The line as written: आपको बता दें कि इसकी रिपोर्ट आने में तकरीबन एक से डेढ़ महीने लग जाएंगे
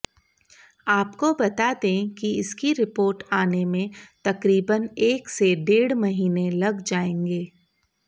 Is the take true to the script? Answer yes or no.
yes